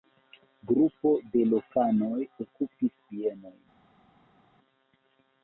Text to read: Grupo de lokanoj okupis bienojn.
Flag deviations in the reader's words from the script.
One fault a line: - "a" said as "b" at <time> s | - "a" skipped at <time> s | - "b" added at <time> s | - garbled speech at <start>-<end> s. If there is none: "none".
none